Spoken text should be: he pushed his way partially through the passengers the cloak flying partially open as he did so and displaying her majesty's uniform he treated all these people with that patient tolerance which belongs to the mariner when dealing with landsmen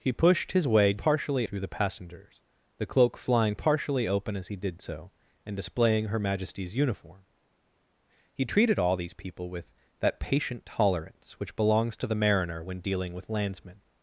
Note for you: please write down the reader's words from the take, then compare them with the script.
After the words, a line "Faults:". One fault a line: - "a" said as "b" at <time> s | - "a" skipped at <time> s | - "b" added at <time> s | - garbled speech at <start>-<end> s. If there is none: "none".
he pushed his way partially through the passengers the cloak flying partially open as he did so and displaying her majesty's uniform he treated all these people with that patient tolerance which belongs to the mariner when dealing with landsmen
Faults:
none